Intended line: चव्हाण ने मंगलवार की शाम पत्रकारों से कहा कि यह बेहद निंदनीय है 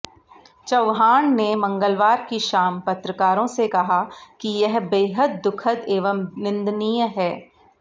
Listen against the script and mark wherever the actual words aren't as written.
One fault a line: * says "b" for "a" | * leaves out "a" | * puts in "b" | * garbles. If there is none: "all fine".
* puts in "दुखद एवं"